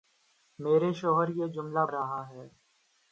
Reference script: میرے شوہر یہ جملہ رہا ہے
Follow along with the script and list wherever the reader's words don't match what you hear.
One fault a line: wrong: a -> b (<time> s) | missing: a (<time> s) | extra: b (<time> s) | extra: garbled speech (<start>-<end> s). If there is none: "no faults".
no faults